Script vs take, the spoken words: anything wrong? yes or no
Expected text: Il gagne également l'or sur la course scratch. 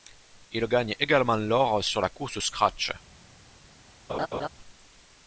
no